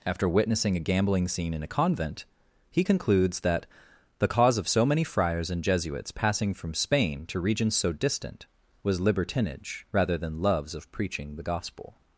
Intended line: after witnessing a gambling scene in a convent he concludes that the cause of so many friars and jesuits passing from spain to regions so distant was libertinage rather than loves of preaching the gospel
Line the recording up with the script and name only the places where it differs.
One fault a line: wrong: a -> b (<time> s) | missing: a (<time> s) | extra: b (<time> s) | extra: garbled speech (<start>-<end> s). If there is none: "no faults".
no faults